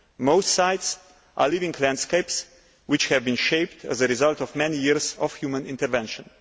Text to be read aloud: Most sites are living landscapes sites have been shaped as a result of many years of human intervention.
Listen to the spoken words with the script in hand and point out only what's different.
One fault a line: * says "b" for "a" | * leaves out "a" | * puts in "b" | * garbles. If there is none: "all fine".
* says "which" for "sites"